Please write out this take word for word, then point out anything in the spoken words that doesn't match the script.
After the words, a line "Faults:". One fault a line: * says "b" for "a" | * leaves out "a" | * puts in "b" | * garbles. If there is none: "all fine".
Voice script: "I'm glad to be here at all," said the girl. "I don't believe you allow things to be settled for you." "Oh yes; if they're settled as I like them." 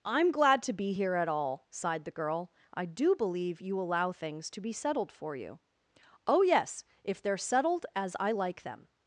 "I'm glad to be here at all," sighed the girl. "I do believe you allow things to be settled for you." "Oh yes; if they're settled as I like them."
Faults:
* says "sighed" for "said"
* says "do" for "don't"